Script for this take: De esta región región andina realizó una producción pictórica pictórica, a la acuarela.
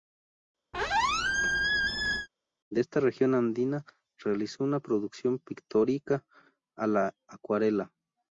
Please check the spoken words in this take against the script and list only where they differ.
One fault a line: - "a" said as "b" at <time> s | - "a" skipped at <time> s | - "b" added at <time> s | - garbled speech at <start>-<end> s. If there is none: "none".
- "región" skipped at 3.3 s
- "pictórica" skipped at 6.3 s